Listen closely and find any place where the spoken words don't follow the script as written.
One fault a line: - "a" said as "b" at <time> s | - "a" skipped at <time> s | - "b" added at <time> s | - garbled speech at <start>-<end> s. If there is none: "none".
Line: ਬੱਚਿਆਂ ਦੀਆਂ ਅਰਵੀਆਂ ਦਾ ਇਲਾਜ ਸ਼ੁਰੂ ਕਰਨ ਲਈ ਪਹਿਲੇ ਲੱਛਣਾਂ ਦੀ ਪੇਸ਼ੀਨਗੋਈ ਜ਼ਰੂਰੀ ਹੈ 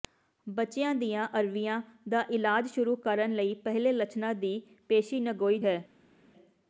- "ਜ਼ਰੂਰੀ" skipped at 5.6 s